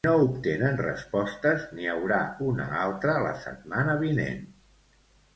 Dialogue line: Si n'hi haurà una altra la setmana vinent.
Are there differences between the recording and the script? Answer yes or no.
yes